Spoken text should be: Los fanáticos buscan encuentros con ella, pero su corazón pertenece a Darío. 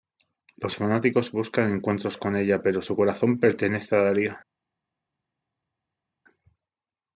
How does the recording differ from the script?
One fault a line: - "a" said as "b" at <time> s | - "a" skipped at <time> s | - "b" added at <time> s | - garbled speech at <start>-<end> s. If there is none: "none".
none